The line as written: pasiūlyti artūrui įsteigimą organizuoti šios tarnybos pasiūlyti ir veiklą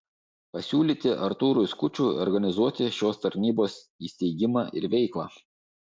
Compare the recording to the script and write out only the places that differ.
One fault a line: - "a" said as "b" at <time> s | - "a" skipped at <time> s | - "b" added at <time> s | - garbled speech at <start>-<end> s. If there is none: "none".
- "įsteigimą" said as "skučui" at 1.7 s
- "pasiūlyti" said as "įsteigimą" at 4.1 s